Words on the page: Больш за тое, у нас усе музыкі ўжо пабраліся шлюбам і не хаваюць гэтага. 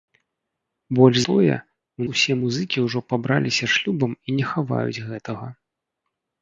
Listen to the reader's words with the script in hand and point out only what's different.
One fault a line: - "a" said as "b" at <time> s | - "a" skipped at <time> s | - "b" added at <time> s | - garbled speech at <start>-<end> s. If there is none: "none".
- "за" skipped at 1.2 s
- "нас" skipped at 2.1 s